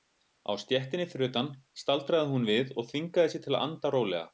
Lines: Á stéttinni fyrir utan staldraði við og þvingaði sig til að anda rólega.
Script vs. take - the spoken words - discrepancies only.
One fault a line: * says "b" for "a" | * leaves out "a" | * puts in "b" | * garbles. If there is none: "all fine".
* puts in "hún"